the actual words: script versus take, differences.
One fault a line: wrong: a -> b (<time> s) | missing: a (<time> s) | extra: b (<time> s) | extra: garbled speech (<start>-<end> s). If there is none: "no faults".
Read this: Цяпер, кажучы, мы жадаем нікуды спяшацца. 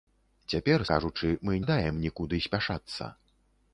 no faults